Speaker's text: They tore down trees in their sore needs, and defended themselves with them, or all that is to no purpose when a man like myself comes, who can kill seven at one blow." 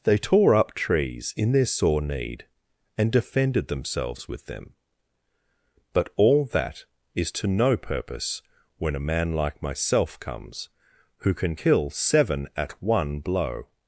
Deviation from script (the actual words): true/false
true